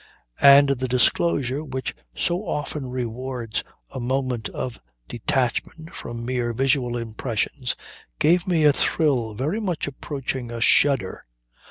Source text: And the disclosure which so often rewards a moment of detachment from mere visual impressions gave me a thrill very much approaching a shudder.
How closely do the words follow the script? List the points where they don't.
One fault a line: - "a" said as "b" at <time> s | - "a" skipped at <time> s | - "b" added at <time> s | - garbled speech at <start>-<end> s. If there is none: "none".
none